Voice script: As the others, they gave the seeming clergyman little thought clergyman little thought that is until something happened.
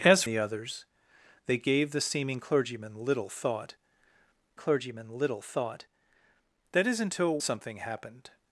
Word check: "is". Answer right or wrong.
right